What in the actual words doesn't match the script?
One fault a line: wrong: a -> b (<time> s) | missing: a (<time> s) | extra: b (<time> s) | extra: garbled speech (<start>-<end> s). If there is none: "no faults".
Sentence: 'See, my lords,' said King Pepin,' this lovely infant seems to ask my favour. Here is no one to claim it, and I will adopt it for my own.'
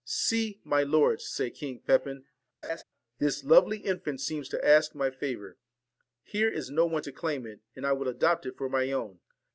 no faults